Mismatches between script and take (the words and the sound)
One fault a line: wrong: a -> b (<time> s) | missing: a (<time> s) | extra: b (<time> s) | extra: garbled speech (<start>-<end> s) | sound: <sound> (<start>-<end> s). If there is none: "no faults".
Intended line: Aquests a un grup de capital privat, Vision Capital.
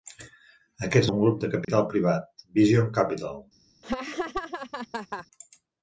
sound: dropout (1.6-1.7 s)
sound: laugh (3.8-5.3 s)